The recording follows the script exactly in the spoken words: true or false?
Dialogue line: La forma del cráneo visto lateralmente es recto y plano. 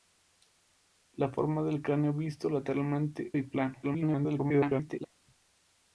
false